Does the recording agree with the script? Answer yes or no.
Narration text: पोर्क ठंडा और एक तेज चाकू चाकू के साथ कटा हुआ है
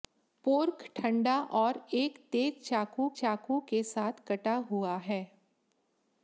yes